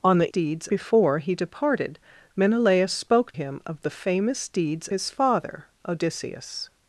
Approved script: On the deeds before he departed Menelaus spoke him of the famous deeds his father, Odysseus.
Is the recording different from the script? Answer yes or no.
no